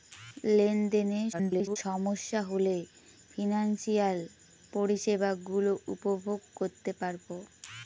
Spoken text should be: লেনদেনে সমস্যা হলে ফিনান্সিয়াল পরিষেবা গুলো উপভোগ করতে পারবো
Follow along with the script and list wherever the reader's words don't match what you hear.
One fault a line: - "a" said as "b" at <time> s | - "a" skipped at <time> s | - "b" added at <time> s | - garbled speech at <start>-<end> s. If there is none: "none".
- garbled speech at 1.3-1.8 s